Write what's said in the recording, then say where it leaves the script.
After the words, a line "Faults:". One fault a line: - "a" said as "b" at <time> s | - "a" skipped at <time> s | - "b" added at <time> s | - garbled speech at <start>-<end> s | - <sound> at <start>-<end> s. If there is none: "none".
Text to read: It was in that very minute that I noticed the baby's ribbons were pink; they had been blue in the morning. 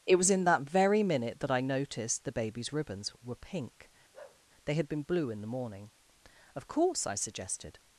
It was in that very minute that I noticed the baby's ribbons were pink; they had been blue in the morning. "Of course," I suggested
Faults:
- bark at 4.1-4.4 s
- "Of course I suggested" added at 6.5 s